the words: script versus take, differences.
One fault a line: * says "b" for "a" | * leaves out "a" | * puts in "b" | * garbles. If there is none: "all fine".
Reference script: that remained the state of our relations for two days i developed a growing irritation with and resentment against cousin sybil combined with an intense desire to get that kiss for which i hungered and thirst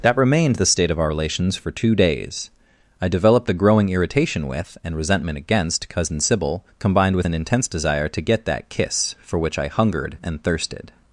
* says "thirsted" for "thirst"